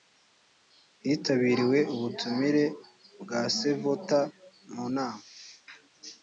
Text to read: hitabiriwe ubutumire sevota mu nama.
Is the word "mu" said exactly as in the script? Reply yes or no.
yes